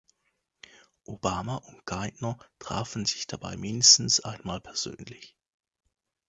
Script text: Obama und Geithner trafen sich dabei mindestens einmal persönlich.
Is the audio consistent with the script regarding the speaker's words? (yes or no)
yes